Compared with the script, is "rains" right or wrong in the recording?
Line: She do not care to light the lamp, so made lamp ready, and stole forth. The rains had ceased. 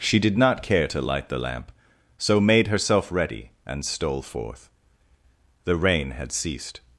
wrong